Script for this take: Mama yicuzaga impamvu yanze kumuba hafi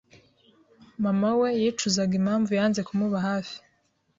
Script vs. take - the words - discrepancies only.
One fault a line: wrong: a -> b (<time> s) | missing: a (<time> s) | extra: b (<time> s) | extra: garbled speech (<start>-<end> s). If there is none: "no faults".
extra: we (1.4 s)